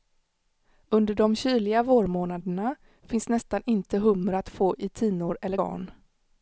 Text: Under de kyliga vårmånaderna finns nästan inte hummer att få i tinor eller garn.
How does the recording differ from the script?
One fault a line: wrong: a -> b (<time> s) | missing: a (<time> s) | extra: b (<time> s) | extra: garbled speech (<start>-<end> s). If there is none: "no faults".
no faults